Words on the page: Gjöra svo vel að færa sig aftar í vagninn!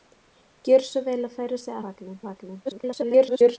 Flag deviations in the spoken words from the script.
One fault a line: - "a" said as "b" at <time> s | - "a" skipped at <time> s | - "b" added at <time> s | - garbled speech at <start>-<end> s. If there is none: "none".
- "aftar" said as "vagninn" at 1.9 s
- garbled speech at 2.7-3.6 s